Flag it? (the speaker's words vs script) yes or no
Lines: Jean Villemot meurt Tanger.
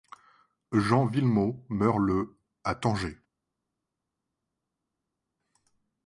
yes